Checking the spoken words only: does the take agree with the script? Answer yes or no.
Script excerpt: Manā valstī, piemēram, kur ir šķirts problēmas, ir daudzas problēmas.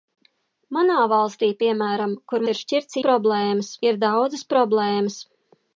yes